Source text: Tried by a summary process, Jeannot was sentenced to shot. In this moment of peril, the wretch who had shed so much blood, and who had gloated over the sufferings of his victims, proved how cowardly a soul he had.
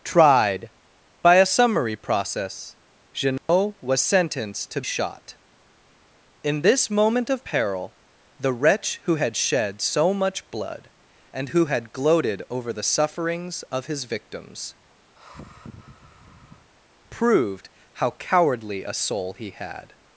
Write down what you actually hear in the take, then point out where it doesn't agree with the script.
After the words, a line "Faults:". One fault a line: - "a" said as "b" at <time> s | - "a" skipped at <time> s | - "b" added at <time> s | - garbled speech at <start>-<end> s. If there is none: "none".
Tried by a summary process, Jeannot was sentenced to shot. In this moment of peril, the wretch who had shed so much blood, and who had gloated over the sufferings of his victims, proved how cowardly a soul he had.
Faults:
none